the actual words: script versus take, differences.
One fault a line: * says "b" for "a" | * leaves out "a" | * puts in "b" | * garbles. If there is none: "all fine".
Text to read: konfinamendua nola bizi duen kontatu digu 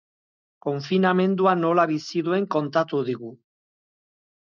all fine